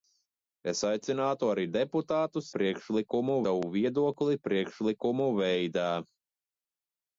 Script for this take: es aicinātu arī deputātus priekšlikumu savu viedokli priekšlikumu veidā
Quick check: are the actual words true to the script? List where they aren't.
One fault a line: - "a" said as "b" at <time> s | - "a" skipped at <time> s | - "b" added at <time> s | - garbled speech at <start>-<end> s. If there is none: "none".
none